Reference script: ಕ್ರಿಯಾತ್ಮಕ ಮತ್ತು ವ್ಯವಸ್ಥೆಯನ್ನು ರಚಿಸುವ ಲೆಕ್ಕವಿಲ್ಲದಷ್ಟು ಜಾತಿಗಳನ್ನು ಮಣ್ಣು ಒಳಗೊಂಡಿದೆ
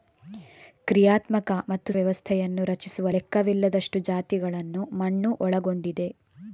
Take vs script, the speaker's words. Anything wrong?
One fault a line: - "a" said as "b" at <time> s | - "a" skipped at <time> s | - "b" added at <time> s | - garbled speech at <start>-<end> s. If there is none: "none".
none